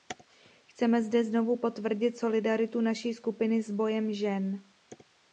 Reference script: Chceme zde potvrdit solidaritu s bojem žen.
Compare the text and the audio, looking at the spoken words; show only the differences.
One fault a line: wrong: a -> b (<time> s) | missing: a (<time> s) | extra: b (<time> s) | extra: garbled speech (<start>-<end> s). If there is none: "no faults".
extra: znovu (1.2 s)
extra: naší skupiny (2.8 s)